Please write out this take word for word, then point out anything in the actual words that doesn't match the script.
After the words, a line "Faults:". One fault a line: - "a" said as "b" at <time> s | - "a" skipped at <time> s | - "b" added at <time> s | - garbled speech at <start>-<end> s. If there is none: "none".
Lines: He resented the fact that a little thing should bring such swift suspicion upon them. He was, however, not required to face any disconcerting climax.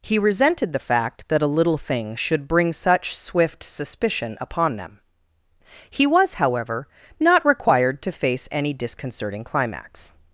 He resented the fact that a little thing should bring such swift suspicion upon them. He was, however, not required to face any disconcerting climax.
Faults:
none